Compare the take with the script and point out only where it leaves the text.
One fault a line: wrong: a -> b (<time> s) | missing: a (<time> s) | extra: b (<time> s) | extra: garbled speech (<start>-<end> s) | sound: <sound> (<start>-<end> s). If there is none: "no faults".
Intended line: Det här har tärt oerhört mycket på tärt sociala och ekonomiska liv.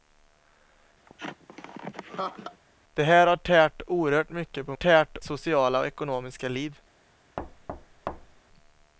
sound: laugh (1.1-2.6 s)
sound: thud (7.4-8.4 s)